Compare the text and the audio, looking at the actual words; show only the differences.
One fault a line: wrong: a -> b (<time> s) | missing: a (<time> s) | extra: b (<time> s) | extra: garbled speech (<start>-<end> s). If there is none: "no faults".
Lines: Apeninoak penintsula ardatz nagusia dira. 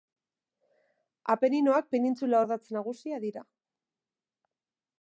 no faults